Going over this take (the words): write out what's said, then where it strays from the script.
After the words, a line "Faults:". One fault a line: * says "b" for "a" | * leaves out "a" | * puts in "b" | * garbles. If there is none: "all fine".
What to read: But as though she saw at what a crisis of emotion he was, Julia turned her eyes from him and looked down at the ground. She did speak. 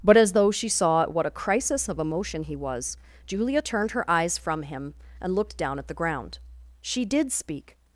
But as though she saw at what a crisis of emotion he was, Julia turned her eyes from him and looked down at the ground. She did speak.
Faults:
all fine